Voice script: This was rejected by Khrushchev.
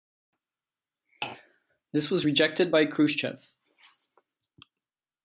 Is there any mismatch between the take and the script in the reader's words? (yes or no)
no